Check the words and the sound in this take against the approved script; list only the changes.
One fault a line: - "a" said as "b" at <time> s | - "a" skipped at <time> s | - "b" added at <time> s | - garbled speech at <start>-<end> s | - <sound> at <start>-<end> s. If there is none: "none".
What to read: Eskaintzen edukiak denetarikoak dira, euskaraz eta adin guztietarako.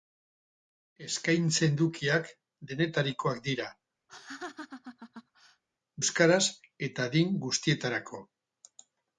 - laugh at 4.1-5.6 s